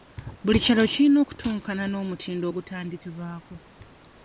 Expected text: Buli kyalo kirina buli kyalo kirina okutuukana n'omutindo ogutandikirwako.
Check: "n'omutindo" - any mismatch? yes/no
no